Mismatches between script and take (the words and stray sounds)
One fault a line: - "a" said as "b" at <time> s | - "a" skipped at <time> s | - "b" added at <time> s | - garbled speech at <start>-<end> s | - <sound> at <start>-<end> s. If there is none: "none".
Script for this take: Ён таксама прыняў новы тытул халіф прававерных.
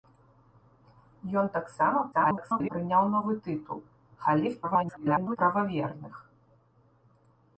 - garbled speech at 2.1-2.7 s
- garbled speech at 4.6-5.4 s